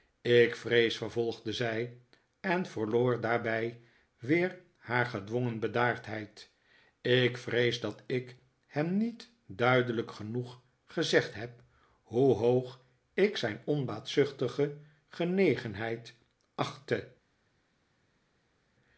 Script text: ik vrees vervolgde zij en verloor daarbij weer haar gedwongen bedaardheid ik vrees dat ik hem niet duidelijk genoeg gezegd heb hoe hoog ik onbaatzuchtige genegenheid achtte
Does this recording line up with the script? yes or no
no